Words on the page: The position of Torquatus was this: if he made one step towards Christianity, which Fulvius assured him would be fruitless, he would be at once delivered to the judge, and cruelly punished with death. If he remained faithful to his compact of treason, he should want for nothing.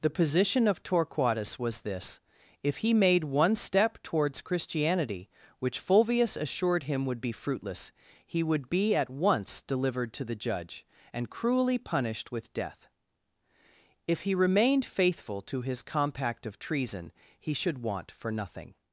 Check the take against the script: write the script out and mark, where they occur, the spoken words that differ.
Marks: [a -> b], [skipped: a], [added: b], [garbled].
The position of Torquatus was this: if he made one step towards Christianity, which Fulvius assured him would be fruitless, he would be at once delivered to the judge, and cruelly punished with death. If he remained faithful to his compact of treason, he should want for nothing.